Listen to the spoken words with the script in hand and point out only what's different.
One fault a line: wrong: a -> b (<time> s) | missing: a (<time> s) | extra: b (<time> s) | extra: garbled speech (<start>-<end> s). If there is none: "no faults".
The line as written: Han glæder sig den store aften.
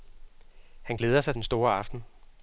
no faults